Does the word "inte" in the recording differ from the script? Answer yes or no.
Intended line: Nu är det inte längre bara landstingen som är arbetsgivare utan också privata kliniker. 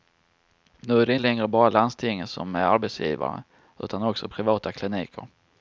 yes